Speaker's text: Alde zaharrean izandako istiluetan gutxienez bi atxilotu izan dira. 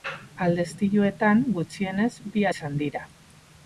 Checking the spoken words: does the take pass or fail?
fail